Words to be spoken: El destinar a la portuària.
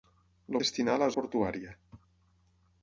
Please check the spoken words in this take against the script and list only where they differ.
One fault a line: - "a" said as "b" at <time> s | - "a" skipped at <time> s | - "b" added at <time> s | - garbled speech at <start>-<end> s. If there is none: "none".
none